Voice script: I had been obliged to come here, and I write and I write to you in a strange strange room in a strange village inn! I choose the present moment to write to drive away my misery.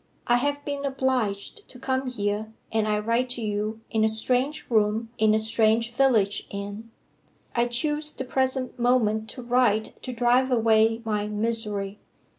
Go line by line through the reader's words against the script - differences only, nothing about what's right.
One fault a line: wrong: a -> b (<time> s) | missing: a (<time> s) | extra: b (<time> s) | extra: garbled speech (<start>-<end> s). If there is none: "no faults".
wrong: had -> have (0.4 s)
missing: and I write (3.3 s)
missing: strange (4.7 s)